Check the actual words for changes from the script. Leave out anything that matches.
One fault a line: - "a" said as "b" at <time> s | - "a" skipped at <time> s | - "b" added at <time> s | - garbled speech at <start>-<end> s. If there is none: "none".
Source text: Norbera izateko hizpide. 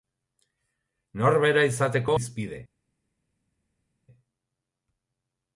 none